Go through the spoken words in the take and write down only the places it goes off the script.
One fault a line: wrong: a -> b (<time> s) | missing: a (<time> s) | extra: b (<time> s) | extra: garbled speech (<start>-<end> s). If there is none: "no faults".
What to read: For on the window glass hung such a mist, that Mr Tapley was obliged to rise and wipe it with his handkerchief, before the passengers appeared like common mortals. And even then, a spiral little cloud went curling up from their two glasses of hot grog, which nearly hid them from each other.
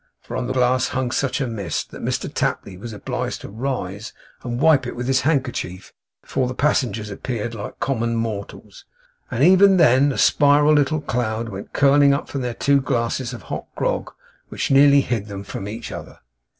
missing: window (0.6 s)